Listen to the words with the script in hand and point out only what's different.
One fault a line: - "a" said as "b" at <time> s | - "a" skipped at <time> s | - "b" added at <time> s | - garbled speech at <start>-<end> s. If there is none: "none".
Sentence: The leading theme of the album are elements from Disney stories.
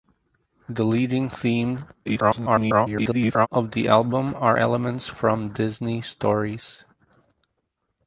- garbled speech at 2.1-3.5 s